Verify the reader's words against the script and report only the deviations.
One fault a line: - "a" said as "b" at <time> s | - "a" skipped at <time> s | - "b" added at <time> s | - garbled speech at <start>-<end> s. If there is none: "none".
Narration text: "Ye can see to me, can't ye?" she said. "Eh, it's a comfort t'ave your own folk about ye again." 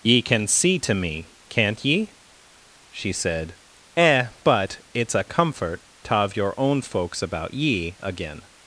- "but" added at 4.4 s
- "folk" said as "folks" at 6.8 s